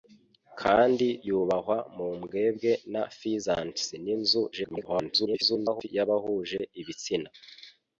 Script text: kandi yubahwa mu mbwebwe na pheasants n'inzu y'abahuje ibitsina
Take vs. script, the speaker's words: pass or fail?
fail